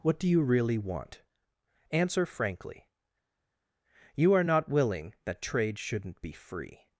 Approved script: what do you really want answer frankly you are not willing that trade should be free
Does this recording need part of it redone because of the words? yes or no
yes